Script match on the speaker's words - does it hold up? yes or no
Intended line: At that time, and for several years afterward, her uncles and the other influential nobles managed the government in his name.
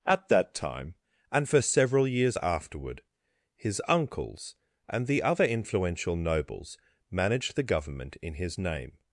no